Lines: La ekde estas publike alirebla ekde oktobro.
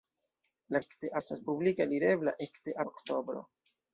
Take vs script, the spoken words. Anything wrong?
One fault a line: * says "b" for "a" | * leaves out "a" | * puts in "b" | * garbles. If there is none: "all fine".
all fine